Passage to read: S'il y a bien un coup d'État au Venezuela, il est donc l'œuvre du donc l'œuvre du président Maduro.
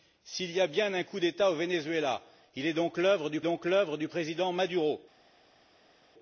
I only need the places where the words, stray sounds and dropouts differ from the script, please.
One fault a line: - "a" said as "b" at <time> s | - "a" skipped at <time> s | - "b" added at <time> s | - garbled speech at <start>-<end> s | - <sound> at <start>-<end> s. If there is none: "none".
none